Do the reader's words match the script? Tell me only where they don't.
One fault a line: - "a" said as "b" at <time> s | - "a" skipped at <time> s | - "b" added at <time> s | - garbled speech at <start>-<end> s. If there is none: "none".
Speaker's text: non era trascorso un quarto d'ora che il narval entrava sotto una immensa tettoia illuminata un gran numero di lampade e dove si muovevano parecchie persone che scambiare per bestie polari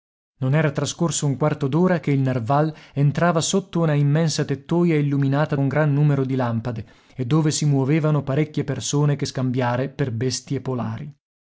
none